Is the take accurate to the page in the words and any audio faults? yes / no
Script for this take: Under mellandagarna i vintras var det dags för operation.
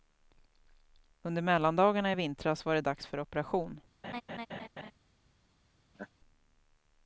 no